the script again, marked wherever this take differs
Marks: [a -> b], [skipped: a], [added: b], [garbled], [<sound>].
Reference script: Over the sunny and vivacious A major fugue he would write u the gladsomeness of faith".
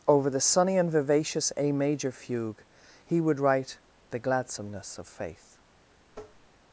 Over the sunny and vivacious A major fugue he would write [skipped: u] the gladsomeness of faith". [tap]